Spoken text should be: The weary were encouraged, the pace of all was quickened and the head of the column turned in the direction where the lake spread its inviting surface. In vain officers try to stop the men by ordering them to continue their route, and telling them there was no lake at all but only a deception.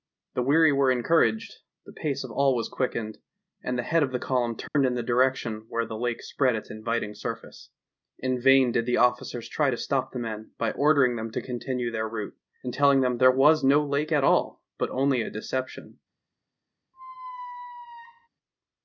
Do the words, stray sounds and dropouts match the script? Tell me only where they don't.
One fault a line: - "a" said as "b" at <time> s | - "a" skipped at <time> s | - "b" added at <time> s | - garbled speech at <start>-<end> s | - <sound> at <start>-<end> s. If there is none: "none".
- dropout at 4.7-4.8 s
- "did the" added at 8.7 s
- squeak at 16.9-18.3 s